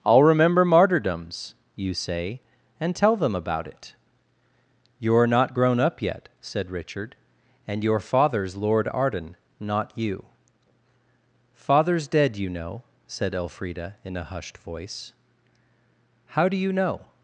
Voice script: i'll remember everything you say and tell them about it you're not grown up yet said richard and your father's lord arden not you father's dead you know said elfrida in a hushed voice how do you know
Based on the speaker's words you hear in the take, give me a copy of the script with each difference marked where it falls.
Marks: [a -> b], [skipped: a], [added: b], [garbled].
i'll remember [everything -> martyrdoms] you say and tell them about it you're not grown up yet said richard and your father's lord arden not you father's dead you know said elfrida in a hushed voice how do you know